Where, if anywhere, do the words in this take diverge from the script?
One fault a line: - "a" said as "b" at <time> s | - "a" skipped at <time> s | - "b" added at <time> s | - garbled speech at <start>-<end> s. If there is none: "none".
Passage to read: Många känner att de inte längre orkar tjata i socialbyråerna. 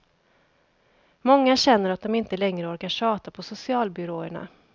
- "i" said as "på" at 3.3 s